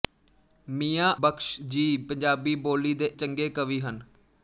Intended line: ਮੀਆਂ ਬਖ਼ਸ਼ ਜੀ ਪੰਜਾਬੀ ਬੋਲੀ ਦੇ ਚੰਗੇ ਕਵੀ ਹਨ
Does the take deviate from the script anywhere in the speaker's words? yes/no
no